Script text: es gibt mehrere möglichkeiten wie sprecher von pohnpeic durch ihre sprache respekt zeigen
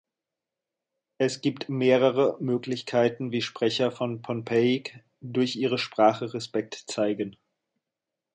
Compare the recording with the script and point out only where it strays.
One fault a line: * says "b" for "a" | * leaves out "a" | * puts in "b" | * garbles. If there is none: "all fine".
all fine